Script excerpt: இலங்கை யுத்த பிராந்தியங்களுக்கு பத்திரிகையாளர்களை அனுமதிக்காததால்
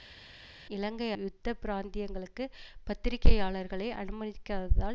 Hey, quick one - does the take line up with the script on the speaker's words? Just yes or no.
yes